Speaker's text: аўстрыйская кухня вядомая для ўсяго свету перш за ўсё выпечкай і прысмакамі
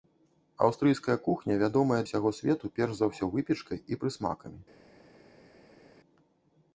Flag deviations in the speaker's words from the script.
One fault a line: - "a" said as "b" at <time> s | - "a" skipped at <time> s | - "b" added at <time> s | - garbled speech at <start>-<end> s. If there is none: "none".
- "для" skipped at 2.0 s